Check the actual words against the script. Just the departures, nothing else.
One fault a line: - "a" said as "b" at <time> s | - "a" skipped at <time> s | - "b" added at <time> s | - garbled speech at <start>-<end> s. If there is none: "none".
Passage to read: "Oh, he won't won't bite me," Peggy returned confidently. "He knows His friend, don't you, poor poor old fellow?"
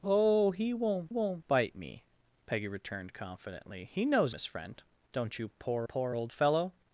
none